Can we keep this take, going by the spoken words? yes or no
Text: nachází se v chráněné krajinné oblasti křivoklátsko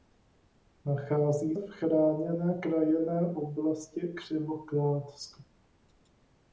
no